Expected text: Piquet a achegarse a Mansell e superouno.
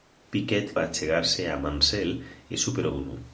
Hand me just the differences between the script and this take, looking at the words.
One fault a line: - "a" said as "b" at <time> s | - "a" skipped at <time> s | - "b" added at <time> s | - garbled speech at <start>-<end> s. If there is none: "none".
none